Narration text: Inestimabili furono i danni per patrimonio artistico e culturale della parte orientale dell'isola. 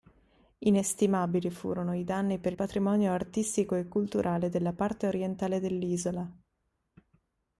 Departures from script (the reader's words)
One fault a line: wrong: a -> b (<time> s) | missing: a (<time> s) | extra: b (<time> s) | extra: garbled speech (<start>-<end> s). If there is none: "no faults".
no faults